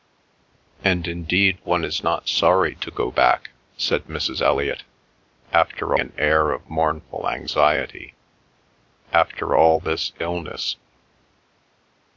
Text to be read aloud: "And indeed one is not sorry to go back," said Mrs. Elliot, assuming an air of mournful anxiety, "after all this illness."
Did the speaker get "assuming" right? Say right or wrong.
wrong